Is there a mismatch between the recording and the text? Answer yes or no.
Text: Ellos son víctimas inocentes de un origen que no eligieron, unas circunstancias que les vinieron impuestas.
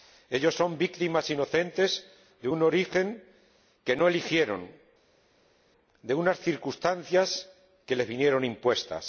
yes